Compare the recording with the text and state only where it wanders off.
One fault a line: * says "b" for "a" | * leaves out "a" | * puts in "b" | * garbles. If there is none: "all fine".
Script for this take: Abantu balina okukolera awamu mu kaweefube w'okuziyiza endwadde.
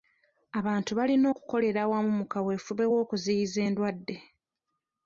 all fine